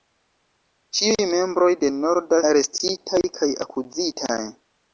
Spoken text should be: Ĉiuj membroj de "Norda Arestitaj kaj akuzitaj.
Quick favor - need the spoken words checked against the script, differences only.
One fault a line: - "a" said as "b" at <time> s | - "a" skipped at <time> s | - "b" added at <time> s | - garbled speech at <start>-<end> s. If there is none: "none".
none